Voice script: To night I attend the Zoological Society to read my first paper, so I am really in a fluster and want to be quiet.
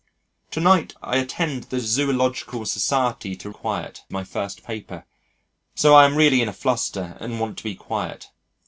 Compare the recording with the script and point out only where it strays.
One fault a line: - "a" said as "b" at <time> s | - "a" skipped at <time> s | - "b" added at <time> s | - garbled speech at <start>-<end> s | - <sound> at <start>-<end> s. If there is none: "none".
- "read" said as "quiet" at 3.5 s